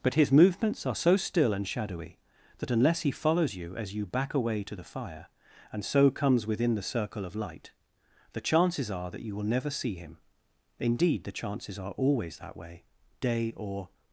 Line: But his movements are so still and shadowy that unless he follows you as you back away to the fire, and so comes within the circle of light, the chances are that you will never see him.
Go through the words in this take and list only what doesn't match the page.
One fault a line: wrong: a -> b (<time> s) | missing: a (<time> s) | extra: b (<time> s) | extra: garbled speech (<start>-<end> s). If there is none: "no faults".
extra: Indeed the chances are always that way day or (10.8 s)